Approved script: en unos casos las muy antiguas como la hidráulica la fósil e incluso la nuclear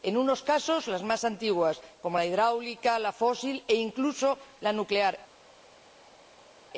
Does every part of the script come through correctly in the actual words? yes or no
no